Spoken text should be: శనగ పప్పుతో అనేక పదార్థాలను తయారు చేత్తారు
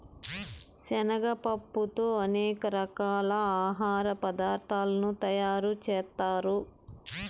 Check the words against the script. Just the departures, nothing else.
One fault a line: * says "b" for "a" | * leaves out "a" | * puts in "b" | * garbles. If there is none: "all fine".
* puts in "రకాల ఆహార"